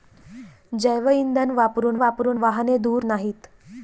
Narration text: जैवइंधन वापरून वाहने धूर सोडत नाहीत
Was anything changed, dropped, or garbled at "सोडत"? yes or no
yes